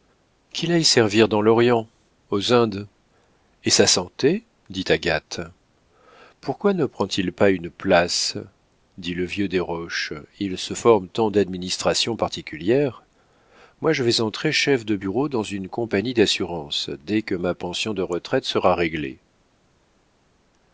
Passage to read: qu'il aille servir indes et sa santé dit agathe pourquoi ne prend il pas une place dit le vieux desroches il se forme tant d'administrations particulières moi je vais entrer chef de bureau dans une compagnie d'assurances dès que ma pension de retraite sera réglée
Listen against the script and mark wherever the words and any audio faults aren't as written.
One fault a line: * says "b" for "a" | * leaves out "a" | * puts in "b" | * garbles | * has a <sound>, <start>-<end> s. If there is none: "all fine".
* puts in "dans l'orient aux"